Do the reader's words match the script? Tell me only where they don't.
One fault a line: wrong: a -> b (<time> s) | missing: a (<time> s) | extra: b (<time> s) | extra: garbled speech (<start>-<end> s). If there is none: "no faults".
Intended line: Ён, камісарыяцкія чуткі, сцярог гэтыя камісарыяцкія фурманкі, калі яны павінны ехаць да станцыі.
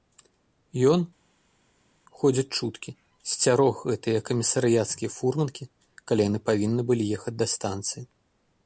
wrong: камісарыяцкія -> ходзяць (2.2 s)
extra: былі (6.9 s)